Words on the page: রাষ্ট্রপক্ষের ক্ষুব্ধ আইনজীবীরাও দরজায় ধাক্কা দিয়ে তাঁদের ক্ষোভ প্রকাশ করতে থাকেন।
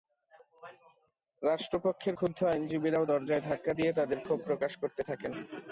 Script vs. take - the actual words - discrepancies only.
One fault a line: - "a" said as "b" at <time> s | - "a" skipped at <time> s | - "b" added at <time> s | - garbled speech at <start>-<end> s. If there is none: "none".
none